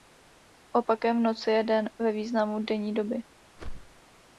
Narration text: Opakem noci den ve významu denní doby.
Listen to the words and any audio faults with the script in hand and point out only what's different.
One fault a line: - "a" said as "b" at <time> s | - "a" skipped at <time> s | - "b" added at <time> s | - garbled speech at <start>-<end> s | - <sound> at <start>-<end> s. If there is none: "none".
- "je" added at 1.5 s
- whoosh at 3.6-4.0 s